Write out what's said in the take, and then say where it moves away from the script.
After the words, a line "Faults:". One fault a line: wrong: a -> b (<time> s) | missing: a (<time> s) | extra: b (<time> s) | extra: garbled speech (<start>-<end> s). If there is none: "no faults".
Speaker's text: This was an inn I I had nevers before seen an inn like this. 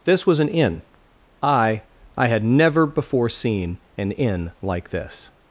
This was an inn I I had never before seen an inn like this.
Faults:
wrong: nevers -> never (2.4 s)